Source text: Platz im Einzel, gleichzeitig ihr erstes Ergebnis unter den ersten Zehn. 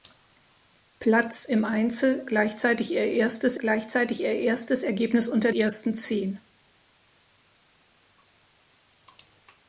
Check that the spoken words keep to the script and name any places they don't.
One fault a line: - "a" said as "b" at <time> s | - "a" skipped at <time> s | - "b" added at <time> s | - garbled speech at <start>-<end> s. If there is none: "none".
- "gleichzeitig ihr erstes" added at 3.6 s
- "den" skipped at 5.5 s